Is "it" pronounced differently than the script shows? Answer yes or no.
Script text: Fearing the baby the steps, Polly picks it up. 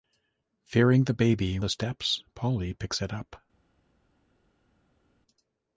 no